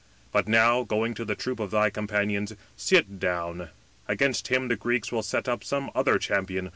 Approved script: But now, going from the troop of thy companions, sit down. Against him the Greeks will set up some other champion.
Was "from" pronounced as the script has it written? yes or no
no